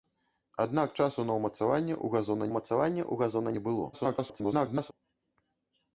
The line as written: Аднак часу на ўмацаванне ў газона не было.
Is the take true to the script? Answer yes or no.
no